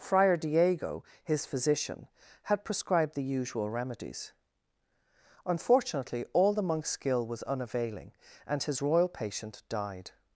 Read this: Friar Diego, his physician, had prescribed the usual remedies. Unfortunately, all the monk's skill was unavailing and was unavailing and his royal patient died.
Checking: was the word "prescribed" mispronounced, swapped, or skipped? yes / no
no